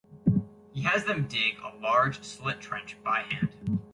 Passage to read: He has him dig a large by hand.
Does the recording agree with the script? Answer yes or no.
no